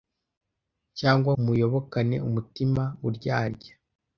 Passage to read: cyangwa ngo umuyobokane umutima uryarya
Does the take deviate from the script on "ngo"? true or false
true